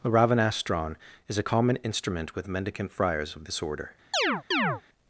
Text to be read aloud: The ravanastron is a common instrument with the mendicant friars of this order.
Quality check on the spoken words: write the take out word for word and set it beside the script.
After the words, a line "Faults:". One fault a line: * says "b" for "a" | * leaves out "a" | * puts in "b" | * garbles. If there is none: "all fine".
The ravanastron is a common instrument with mendicant friars of this order.
Faults:
* leaves out "the"